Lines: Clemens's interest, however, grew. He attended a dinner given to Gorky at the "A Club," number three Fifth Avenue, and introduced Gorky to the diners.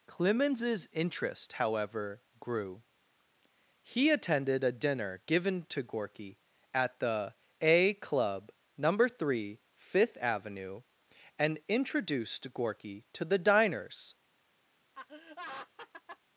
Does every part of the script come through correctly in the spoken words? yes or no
yes